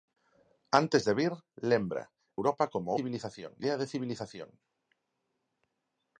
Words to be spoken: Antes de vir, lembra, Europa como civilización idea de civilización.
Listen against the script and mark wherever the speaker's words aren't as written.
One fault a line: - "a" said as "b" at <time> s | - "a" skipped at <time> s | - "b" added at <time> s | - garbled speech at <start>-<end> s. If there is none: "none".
none